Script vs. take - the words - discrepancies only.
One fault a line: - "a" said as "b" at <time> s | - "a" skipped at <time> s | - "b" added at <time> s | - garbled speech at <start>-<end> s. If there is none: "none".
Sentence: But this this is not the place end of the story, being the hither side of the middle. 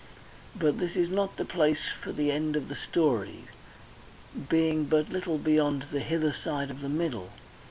- "this" skipped at 0.9 s
- "for the" added at 2.0 s
- "but little beyond" added at 4.9 s